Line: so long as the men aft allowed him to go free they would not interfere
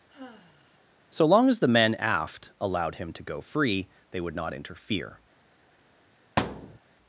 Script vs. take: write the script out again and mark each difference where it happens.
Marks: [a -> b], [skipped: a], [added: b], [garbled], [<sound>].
[sigh] so long as the men aft allowed him to go free they would not interfere [thud]